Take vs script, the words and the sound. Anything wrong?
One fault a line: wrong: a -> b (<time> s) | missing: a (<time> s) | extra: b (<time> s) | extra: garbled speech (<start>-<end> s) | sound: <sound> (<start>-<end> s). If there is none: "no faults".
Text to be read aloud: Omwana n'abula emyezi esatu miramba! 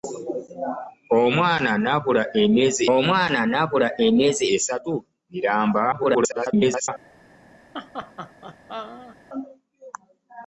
extra: omwana n'abula emyezi (2.9 s)
extra: garbled speech (5.9-6.9 s)
sound: laugh (7.7-9.2 s)